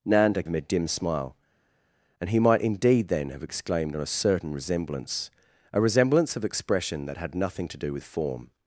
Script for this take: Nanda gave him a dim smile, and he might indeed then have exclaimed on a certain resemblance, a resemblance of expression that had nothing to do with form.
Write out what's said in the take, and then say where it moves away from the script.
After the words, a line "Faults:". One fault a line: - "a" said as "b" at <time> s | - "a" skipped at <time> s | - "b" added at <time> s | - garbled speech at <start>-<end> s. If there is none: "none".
Nanda him a dim smile, and he might indeed then have exclaimed on a certain resemblance, a resemblance of expression that had nothing to do with form.
Faults:
- "gave" skipped at 0.4 s